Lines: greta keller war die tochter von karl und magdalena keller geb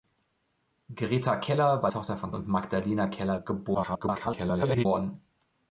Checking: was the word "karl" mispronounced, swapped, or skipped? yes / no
yes